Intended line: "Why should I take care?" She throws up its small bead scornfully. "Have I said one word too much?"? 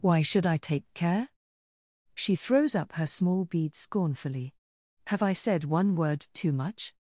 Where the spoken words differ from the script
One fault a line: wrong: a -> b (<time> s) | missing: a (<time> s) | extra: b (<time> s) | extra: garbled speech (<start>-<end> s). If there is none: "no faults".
wrong: its -> her (2.9 s)